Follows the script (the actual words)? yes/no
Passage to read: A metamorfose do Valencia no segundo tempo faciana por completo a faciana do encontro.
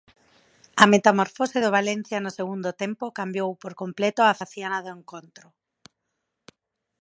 no